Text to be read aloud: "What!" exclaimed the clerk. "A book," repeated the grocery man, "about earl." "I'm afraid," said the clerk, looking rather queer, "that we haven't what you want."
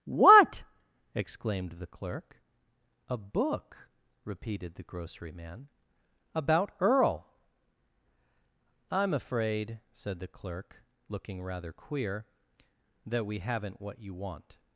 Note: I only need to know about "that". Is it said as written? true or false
true